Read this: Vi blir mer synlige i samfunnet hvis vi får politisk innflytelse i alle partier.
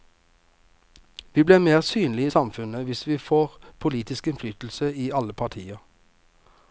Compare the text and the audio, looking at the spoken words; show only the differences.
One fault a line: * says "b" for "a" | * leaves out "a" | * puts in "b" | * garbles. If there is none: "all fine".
all fine